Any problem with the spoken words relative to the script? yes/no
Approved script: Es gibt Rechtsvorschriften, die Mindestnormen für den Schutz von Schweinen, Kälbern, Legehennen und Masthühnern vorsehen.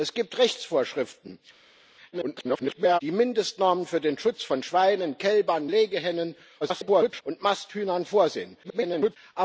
yes